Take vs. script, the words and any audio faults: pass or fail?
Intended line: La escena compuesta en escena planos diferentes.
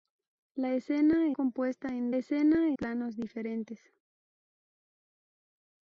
pass